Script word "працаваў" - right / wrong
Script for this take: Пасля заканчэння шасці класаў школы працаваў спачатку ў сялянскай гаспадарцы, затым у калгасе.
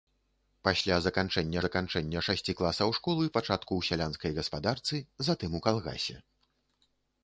wrong